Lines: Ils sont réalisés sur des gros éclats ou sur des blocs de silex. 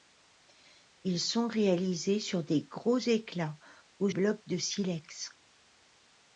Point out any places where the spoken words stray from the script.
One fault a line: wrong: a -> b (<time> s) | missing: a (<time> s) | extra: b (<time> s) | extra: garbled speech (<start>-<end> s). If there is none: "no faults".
missing: sur des (4.1 s)